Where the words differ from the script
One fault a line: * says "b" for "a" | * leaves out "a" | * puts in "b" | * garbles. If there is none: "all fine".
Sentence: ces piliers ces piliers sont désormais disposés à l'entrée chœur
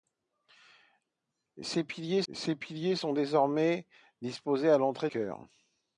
all fine